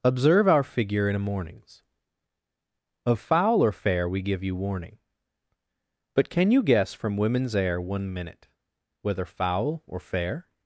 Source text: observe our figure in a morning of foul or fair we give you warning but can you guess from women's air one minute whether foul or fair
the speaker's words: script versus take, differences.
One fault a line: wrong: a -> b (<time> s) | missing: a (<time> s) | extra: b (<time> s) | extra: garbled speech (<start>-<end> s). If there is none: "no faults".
wrong: morning -> mornings (1.2 s)